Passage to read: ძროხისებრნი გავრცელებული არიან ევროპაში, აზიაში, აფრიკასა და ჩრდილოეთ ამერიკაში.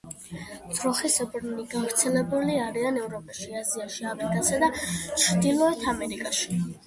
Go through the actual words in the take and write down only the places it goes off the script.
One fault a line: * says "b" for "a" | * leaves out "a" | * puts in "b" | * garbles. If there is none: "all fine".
all fine